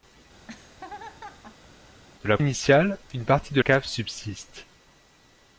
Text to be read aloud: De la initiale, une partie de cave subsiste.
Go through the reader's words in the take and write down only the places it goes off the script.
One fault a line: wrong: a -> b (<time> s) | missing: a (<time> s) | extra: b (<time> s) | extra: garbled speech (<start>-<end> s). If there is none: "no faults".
no faults